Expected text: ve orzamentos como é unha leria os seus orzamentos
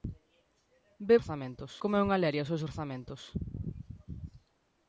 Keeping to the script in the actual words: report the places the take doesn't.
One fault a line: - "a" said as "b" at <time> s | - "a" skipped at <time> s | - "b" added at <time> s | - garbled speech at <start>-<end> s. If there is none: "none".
none